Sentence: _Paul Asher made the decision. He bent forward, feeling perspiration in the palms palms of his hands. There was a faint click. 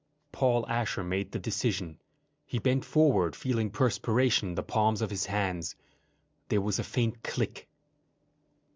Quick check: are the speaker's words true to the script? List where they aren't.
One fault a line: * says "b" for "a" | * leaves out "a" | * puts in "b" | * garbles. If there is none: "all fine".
* leaves out "palms"